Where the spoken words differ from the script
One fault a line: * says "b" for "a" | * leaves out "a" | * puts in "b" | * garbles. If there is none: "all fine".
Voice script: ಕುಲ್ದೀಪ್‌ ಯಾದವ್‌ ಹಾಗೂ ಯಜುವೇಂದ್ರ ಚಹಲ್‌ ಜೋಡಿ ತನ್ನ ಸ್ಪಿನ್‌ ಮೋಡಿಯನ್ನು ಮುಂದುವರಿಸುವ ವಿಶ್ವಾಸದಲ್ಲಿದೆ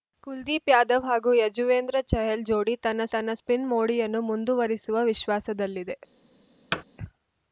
* puts in "ತನ್ನ"